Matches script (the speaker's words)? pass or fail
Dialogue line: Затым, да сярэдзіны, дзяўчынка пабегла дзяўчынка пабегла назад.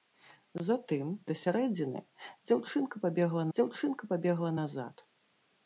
pass